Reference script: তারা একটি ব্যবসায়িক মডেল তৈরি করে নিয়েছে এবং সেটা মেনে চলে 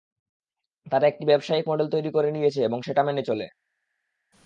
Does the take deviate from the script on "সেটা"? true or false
false